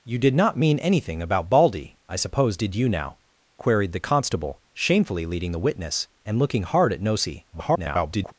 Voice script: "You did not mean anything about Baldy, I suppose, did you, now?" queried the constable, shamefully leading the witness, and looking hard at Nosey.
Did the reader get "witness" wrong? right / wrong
right